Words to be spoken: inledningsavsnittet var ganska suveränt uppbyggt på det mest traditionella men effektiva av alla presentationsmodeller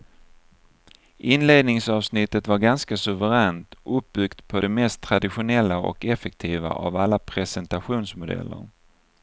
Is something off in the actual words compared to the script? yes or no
yes